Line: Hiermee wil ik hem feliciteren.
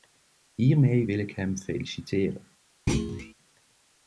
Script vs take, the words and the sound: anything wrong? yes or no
yes